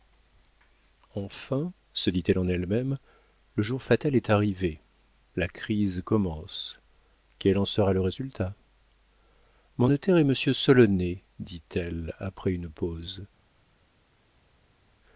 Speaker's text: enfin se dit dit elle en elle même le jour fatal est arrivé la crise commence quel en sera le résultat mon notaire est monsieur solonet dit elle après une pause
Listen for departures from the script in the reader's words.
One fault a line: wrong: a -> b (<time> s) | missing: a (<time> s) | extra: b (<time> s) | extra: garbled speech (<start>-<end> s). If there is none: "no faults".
missing: dit (2.2 s)